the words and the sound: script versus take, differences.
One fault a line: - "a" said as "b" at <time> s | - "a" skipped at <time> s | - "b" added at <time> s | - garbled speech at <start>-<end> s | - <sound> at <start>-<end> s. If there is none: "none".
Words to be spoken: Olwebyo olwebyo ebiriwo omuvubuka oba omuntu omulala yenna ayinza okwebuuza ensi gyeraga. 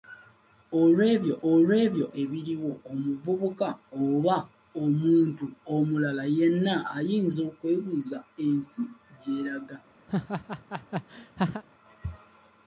- laugh at 10.1-11.6 s